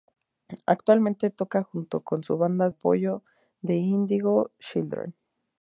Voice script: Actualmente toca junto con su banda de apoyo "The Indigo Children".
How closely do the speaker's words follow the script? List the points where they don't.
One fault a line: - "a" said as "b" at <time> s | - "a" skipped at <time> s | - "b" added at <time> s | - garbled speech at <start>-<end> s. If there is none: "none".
- "de" skipped at 2.7 s